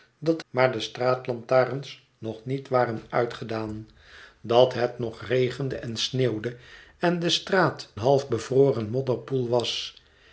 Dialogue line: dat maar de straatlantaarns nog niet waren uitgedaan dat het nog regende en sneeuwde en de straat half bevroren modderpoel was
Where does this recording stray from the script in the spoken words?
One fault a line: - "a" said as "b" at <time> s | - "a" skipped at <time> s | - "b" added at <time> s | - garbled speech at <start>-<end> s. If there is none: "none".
none